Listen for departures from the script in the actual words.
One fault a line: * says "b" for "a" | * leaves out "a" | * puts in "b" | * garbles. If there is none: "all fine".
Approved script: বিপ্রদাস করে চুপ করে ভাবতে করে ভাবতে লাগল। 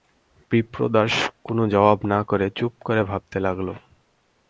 * says "কোনো জবাব না" for "করে চুপ"
* says "চুপ" for "ভাবতে"